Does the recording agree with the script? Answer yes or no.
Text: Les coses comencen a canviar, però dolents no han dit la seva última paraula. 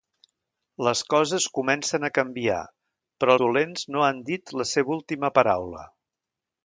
yes